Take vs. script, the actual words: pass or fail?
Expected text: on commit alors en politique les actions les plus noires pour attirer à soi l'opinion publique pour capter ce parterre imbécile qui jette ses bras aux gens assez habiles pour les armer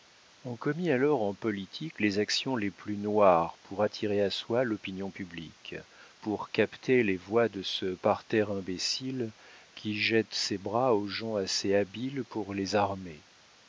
fail